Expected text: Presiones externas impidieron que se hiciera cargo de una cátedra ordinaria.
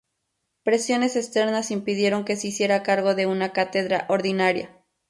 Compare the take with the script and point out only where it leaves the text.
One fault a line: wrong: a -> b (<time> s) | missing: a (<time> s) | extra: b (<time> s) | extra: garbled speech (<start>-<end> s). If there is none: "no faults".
no faults